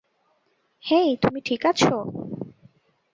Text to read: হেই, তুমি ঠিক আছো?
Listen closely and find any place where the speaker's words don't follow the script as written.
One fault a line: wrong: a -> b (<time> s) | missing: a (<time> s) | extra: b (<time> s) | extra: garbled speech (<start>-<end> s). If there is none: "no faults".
no faults